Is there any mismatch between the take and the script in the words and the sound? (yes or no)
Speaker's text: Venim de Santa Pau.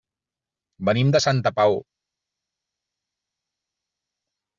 no